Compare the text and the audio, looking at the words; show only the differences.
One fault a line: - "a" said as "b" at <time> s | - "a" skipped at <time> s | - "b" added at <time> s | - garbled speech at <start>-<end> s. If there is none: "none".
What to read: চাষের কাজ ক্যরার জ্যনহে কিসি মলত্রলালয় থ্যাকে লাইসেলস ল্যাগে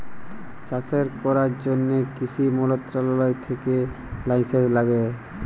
- "কাজ" skipped at 1.1 s